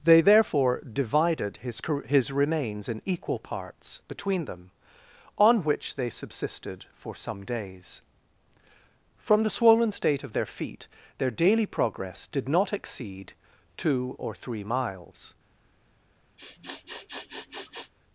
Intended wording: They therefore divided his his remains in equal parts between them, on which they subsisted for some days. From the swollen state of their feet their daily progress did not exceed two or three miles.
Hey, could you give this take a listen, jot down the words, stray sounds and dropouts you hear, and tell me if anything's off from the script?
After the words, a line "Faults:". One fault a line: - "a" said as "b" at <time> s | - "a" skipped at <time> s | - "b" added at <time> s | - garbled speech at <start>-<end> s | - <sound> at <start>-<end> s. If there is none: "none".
They therefore divided his his remains in equal parts between them, on which they subsisted for some days. From the swollen state of their feet their daily progress did not exceed two or three miles.
Faults:
- sniff at 16.4-17.9 s